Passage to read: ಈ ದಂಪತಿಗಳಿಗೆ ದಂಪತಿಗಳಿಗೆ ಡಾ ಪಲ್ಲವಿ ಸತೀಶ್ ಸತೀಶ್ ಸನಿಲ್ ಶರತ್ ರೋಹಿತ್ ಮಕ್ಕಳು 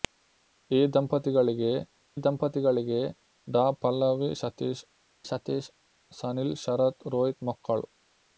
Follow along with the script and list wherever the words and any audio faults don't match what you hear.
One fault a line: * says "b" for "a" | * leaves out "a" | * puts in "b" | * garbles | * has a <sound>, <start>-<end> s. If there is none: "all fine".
all fine